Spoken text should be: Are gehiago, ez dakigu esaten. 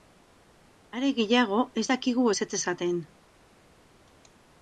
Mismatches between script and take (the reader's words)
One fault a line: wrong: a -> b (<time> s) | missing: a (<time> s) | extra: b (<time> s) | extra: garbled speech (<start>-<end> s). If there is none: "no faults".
extra: ezetz (2.3 s)